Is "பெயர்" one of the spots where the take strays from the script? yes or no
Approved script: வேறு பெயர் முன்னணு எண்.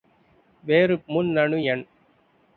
yes